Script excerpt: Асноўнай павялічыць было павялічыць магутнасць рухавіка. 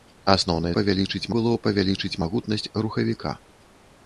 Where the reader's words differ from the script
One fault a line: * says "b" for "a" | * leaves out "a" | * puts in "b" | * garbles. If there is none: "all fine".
all fine